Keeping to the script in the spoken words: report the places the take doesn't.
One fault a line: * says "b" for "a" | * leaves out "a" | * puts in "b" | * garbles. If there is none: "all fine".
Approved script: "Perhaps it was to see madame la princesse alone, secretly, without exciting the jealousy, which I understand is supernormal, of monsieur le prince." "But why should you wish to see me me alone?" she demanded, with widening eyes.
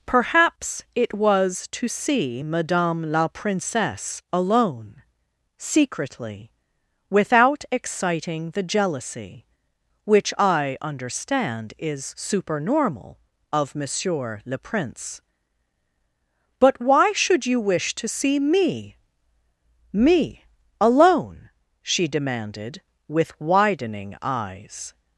all fine